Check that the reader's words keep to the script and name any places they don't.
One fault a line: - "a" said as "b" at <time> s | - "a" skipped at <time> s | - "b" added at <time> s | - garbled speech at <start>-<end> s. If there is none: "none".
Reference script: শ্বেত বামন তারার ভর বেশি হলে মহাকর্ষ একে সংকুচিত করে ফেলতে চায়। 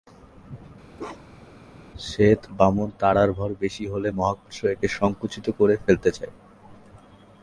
none